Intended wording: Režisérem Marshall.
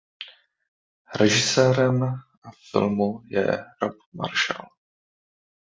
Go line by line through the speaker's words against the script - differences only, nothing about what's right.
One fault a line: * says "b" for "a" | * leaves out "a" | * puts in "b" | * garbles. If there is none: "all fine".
* puts in "filmu je Rob"